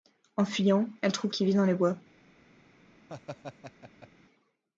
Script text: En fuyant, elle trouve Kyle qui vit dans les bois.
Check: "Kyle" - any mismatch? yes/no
yes